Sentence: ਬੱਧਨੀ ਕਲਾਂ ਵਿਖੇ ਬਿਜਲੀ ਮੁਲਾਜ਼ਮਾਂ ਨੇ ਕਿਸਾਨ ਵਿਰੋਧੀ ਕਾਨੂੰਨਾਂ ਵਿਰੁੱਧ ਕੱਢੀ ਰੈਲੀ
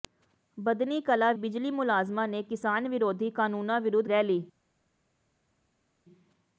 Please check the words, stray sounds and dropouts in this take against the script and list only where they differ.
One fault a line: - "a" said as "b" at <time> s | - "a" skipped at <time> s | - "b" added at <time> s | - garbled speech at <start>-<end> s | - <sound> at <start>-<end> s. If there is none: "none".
- "ਵਿਖੇ" skipped at 1.3 s
- "ਕੱਢੀ" skipped at 4.1 s